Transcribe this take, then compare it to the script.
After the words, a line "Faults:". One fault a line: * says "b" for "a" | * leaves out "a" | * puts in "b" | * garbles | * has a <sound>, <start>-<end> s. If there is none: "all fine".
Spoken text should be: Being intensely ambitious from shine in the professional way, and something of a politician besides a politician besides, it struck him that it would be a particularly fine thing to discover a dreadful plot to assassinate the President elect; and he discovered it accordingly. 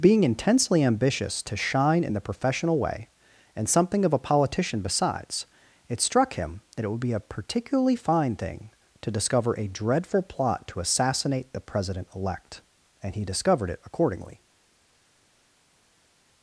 Being intensely ambitious to shine in the professional way, and something of a politician besides, it struck him that it would be a particularly fine thing to discover a dreadful plot to assassinate the President elect; and he discovered it accordingly.
Faults:
* says "to" for "from"
* leaves out "a politician besides"